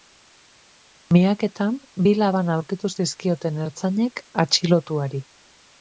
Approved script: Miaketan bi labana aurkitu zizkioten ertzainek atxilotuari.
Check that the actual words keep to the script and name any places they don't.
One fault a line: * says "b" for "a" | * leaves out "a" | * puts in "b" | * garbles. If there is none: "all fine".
all fine